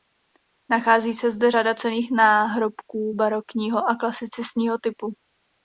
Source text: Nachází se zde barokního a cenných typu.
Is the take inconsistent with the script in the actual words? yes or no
yes